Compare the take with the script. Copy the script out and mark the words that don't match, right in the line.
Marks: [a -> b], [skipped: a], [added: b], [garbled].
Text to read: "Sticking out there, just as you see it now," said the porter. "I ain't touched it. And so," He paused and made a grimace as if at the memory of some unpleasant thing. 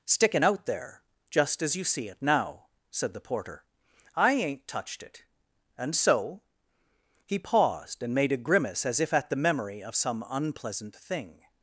"Sticking out there, just as you see it now," said the porter. "I ain't touched it. And so," He paused and made a grimace as if at the memory of some unpleasant thing.